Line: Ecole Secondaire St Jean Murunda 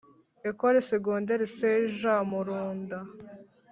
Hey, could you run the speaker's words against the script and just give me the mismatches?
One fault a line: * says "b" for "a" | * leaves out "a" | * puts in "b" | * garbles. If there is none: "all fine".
all fine